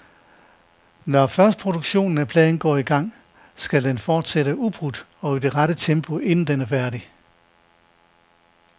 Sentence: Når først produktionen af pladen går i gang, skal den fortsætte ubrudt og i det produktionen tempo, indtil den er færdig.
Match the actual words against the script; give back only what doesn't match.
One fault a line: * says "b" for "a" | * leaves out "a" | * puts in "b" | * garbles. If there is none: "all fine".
* says "rette" for "produktionen"